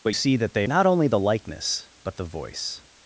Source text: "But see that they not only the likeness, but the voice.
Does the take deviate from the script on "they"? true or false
false